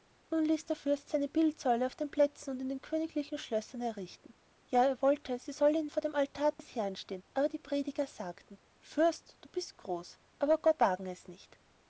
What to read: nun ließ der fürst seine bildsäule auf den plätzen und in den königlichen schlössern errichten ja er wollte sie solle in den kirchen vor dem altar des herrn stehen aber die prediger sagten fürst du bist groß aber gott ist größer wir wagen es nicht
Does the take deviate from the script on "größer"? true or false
true